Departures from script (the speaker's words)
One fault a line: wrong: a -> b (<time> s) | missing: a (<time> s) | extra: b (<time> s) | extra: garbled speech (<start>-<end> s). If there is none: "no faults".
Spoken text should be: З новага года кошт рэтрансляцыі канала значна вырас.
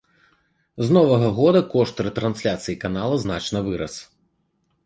no faults